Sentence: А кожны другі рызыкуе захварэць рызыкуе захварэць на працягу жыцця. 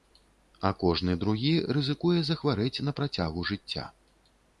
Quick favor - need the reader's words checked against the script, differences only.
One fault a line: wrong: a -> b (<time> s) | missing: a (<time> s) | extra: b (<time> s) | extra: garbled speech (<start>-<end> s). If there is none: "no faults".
missing: рызыкуе захварэць (2.8 s)